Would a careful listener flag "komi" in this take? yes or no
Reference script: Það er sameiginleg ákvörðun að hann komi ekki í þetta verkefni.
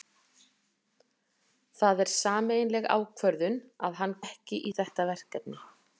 yes